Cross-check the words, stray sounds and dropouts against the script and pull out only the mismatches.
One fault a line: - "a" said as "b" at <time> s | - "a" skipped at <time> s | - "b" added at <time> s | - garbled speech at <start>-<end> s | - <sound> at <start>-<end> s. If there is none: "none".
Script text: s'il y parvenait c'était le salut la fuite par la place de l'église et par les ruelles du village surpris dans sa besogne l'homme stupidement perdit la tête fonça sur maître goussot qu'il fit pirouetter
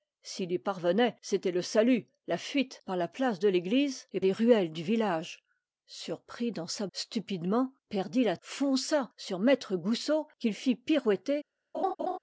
- "par" skipped at 4.2 s
- "besogne l'homme" skipped at 6.9 s
- "tête" skipped at 8.3 s
- laugh at 11.7-12.2 s